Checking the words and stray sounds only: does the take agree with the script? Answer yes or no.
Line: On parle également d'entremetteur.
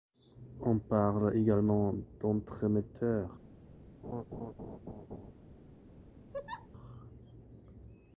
no